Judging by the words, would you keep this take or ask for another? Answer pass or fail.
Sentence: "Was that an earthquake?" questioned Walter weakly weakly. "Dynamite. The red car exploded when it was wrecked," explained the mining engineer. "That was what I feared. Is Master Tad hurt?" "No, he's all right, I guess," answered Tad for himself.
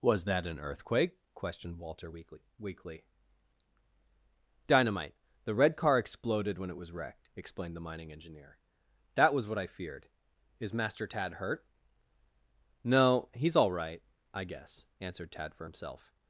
pass